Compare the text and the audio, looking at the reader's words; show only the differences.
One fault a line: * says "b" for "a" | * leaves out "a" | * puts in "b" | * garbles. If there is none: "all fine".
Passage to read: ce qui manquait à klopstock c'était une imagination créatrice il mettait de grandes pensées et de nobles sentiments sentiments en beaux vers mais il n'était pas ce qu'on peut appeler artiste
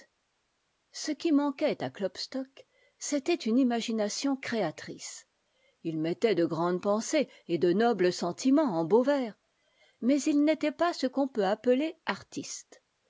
* leaves out "sentiments"